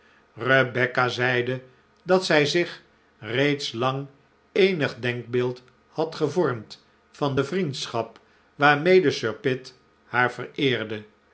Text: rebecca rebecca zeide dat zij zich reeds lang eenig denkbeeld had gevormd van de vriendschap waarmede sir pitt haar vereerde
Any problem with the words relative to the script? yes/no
yes